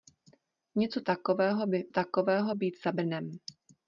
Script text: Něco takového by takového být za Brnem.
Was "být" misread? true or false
false